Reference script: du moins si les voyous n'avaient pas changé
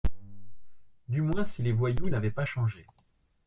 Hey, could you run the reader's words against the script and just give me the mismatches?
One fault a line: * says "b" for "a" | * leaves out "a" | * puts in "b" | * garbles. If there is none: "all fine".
all fine